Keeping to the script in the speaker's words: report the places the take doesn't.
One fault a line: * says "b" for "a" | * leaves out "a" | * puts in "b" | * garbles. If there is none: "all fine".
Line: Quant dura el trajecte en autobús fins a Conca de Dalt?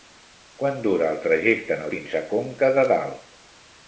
* leaves out "autobús"